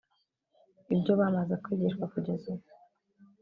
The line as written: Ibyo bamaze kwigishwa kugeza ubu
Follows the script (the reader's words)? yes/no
yes